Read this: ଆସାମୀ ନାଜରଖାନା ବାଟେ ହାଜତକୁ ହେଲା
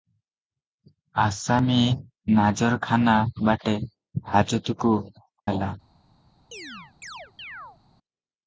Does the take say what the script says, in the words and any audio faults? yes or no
no